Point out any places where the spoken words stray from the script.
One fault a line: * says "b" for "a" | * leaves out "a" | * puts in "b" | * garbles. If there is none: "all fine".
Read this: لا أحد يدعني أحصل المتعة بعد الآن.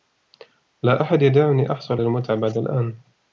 all fine